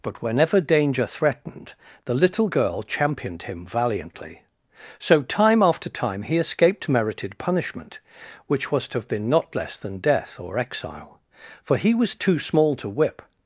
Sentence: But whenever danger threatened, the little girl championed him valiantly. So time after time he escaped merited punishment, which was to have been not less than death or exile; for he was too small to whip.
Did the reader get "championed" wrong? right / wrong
right